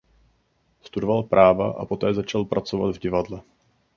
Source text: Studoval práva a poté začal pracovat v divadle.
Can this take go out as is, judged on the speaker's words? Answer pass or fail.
pass